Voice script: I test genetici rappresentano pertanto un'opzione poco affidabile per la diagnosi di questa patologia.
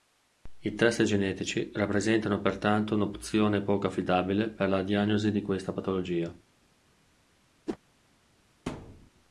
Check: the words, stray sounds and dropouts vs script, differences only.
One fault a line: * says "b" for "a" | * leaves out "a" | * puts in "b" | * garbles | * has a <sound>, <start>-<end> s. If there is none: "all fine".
* has a whoosh, 7.7-7.8 s
* has a thud, 8.7-9.1 s